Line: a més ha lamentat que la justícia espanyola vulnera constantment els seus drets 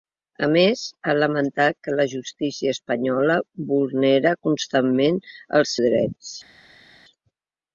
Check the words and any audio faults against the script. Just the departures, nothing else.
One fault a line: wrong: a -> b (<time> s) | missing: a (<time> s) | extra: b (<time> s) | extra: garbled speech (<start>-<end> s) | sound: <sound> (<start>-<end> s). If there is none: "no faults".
missing: seus (5.8 s)